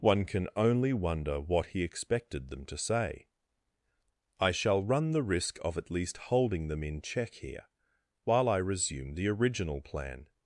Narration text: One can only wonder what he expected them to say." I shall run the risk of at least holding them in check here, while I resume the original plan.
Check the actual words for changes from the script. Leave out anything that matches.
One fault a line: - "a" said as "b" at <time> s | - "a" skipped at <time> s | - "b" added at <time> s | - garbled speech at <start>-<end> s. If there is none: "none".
none